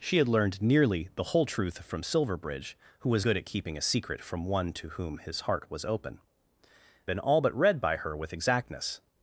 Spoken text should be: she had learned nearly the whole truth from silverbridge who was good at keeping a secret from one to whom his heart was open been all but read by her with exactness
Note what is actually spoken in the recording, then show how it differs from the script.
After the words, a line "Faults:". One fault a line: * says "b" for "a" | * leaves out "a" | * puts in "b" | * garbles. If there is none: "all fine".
she had learned nearly the whole truth from silverbridge who was good at keeping a secret from one to whom his heart was open been all but read by her with exactness
Faults:
all fine